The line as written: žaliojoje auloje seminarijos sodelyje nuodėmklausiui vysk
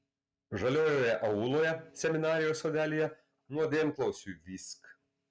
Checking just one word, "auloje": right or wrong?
right